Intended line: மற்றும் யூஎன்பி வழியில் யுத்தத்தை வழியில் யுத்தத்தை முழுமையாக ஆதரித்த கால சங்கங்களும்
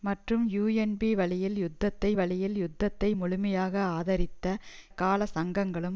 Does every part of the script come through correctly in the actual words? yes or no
yes